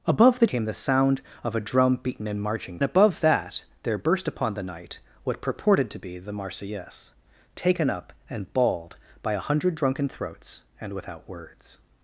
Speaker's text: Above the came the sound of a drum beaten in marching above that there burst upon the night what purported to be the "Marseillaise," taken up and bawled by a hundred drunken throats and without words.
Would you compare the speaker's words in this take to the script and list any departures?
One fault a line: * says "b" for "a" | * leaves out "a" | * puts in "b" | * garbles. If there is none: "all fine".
all fine